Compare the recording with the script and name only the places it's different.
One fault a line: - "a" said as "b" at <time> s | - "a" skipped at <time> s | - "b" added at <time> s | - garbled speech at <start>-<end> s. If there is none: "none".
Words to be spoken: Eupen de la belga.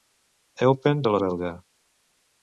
none